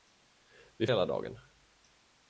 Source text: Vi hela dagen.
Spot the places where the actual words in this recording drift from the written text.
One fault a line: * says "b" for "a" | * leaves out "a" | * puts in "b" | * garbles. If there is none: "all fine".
all fine